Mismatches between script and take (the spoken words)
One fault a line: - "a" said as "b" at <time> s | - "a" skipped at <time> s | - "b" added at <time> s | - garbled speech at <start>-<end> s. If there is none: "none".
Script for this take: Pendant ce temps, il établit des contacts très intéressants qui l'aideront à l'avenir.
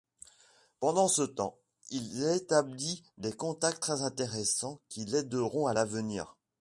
none